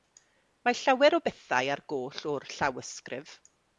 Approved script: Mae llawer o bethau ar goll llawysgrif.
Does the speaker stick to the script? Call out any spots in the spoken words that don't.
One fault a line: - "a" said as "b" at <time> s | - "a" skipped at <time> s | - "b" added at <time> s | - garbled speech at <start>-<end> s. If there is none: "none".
- "o'r" added at 2.3 s